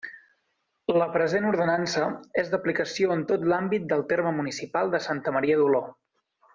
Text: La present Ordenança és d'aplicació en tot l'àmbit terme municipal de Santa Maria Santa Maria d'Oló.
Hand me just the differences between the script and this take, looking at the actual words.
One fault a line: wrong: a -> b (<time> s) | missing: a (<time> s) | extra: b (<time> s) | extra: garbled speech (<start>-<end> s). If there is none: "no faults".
extra: del (3.9 s)
missing: Santa Maria (5.6 s)